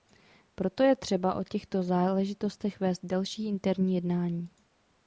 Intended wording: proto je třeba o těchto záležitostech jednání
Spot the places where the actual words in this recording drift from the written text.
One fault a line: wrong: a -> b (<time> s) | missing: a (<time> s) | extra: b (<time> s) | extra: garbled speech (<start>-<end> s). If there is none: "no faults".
extra: vést další interní (2.8 s)